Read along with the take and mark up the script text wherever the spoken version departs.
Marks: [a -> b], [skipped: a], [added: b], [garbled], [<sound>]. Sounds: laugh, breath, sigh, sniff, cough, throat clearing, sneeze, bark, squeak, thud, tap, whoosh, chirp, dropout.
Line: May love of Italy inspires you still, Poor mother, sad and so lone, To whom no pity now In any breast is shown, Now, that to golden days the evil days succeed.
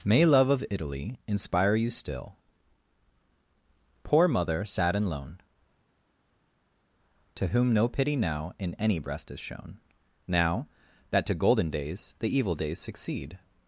May love of Italy [inspires -> inspire] you still, Poor mother, sad and [skipped: so] lone, To whom no pity now In any breast is shown, Now, that to golden days the evil days succeed.